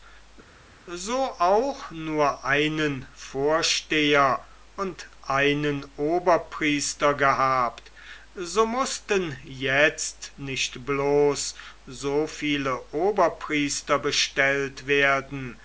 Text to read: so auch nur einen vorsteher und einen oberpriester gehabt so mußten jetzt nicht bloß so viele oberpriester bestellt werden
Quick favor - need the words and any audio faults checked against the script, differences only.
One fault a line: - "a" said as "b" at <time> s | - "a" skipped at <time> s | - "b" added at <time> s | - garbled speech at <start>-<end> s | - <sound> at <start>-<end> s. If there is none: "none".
none